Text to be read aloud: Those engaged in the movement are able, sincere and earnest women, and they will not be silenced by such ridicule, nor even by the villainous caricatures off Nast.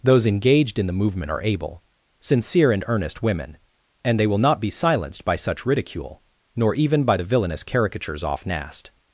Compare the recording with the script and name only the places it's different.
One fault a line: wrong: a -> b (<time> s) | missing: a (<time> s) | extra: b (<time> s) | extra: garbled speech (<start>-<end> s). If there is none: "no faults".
no faults